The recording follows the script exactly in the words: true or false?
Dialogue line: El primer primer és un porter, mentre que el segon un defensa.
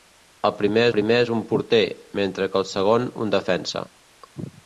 true